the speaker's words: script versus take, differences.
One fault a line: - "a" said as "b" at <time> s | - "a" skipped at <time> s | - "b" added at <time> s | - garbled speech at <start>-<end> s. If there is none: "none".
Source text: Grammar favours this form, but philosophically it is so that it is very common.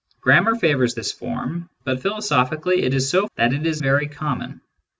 none